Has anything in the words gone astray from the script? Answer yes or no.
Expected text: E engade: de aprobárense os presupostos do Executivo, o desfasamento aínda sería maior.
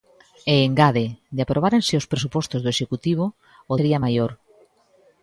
yes